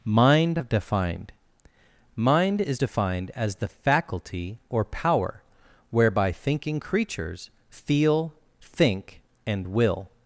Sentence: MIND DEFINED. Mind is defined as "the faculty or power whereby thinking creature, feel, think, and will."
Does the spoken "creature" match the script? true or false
false